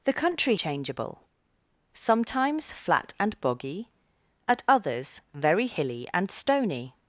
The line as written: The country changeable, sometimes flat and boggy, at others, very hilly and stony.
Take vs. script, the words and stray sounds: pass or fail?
pass